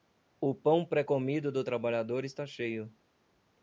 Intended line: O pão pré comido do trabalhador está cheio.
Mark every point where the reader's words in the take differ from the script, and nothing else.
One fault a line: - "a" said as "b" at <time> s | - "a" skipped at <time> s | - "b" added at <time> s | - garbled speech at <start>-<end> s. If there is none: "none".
none